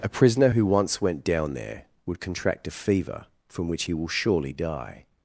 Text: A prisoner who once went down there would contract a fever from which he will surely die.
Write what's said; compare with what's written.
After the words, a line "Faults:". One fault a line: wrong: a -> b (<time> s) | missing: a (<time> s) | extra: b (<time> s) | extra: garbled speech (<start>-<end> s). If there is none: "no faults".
A prisoner who once went down there would contract a fever from which he will surely die.
Faults:
no faults